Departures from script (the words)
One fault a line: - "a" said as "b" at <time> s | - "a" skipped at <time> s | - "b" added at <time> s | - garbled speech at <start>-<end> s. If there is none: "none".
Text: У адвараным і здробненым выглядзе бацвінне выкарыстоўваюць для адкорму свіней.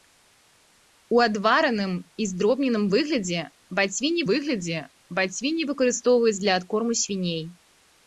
- "выглядзе бацвінне" added at 4.3 s